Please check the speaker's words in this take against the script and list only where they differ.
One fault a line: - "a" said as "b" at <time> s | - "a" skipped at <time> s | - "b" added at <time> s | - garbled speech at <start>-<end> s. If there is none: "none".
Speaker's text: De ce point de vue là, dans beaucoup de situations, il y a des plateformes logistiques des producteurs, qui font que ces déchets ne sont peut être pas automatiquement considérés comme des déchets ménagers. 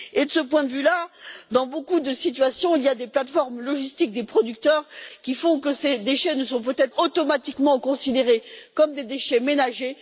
- "pas" skipped at 6.9 s